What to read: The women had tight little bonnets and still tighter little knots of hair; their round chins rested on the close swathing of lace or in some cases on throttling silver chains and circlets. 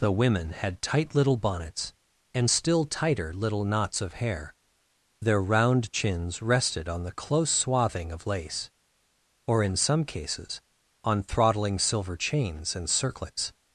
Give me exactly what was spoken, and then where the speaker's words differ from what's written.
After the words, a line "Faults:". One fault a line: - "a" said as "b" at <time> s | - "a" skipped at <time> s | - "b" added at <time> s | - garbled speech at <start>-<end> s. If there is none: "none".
The women had tight little bonnets and still tighter little knots of hair; their round chins rested on the close swathing of lace or in some cases on throttling silver chains and circlets.
Faults:
none